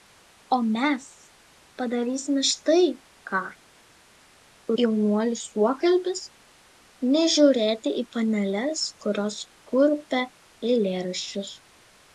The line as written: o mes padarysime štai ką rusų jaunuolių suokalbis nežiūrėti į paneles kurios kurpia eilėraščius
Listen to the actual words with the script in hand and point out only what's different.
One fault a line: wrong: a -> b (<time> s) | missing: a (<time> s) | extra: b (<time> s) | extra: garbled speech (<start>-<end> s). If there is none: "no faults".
missing: rusų (3.4 s)